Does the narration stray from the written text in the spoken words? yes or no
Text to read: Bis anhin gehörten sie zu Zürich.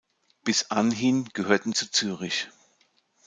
yes